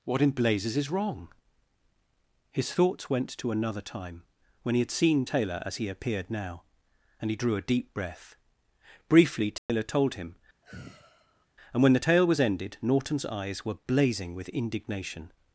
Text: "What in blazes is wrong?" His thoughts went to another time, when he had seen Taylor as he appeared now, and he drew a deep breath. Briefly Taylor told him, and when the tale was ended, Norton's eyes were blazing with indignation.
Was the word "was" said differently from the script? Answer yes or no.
no